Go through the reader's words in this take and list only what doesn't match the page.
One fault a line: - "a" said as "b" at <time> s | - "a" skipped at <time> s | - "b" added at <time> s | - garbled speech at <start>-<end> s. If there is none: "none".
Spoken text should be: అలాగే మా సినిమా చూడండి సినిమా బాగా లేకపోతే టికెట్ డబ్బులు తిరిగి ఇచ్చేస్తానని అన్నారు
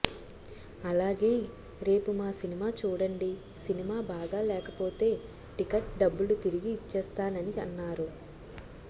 - "రేపు" added at 1.8 s